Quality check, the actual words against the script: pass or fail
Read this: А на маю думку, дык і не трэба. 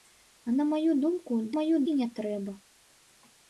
fail